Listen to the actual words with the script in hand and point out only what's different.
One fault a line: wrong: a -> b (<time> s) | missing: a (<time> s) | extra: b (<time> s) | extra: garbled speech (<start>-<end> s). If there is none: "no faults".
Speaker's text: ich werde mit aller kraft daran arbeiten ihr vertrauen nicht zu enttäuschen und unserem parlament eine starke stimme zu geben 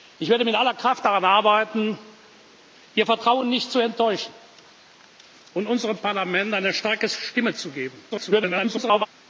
extra: garbled speech (8.1-9.1 s)